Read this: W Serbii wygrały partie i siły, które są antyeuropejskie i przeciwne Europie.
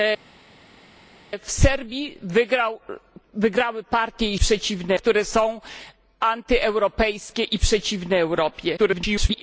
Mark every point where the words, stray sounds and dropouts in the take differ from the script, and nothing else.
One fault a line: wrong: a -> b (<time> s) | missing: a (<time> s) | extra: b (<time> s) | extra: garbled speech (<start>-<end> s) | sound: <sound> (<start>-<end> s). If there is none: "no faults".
wrong: siły -> przeciwne (4.4 s)
extra: garbled speech (8.8-9.4 s)